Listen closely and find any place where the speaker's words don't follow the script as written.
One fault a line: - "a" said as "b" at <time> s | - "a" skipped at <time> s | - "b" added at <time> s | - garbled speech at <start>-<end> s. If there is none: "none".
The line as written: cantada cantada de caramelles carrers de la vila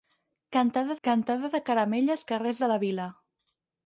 none